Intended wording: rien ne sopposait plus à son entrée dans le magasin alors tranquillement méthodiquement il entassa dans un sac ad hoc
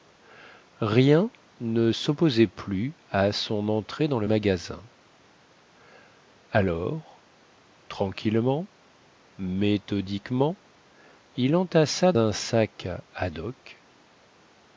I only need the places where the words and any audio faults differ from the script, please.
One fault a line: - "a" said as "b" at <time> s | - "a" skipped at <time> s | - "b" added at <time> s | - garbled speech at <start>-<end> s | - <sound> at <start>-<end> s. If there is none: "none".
- "dans" skipped at 12.1 s